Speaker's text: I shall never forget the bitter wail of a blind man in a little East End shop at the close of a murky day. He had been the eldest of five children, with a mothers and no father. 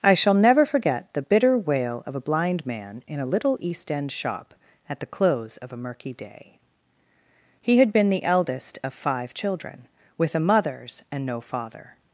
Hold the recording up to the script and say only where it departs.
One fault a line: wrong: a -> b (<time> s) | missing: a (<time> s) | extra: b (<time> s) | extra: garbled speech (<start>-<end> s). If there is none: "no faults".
no faults